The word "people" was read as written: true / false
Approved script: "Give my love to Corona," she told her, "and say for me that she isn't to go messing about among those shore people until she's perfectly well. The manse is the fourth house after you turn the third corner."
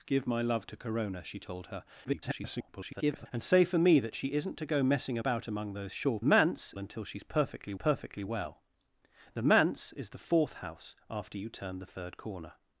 false